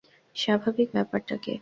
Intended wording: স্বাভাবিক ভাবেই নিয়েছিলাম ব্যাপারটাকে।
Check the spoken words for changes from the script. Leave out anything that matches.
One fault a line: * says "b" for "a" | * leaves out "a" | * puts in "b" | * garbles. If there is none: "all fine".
* leaves out "ভাবেই নিয়েছিলাম"